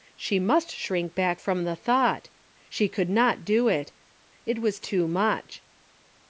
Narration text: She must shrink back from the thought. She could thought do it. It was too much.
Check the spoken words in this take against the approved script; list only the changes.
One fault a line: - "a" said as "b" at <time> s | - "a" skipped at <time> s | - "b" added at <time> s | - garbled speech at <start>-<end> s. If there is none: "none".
- "thought" said as "not" at 3.1 s